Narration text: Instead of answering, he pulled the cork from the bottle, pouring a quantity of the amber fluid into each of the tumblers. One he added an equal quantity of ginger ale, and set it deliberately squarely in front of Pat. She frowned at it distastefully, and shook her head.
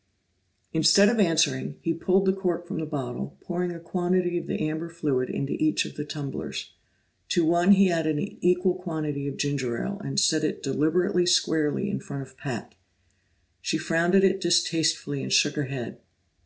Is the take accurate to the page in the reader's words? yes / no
no